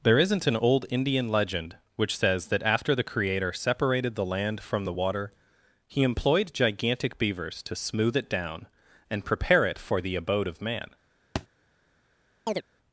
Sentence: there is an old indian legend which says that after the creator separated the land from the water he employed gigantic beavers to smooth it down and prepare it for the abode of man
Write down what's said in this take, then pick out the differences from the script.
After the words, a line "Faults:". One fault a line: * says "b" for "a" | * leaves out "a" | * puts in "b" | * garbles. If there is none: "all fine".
there isn't an old indian legend which says that after the creator separated the land from the water he employed gigantic beavers to smooth it down and prepare it for the abode of man
Faults:
* says "isn't" for "is"